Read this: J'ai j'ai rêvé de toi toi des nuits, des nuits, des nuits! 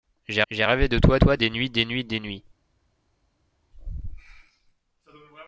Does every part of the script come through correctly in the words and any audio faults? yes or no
yes